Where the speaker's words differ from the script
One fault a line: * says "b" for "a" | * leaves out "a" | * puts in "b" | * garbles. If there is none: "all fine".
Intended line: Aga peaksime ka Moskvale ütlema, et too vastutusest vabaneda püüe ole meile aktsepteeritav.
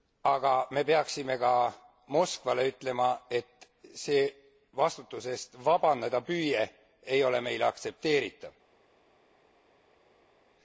* puts in "me"
* says "see" for "too"
* puts in "ei"